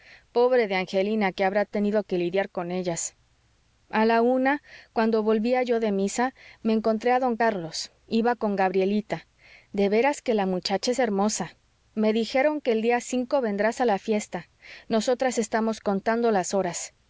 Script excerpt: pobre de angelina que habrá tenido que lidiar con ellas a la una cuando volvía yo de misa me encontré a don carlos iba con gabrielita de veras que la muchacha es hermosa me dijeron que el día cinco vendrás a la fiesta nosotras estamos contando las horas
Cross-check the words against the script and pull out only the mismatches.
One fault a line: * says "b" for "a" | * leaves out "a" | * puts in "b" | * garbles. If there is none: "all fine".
all fine